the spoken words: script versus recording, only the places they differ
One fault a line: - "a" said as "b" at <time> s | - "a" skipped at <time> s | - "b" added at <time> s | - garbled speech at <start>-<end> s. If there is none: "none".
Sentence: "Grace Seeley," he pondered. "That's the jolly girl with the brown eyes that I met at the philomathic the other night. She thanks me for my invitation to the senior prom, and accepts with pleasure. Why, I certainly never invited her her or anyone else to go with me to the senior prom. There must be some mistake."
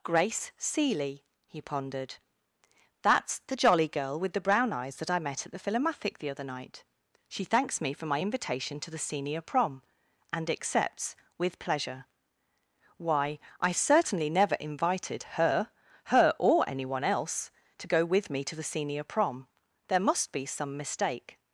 none